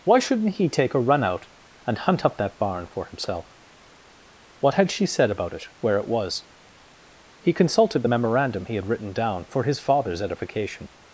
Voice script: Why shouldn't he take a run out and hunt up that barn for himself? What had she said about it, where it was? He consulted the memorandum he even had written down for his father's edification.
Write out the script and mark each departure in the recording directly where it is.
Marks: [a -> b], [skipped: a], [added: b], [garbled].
Why shouldn't he take a run out and hunt up that barn for himself? What had she said about it, where it was? He consulted the memorandum he [skipped: even] had written down for his father's edification.